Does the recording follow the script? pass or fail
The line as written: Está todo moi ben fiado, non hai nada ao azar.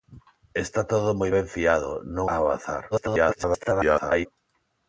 fail